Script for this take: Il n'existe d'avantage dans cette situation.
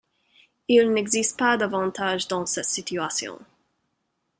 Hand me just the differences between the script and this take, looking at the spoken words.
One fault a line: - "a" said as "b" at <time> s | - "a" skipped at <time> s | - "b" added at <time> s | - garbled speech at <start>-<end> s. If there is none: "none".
- "pas" added at 1.4 s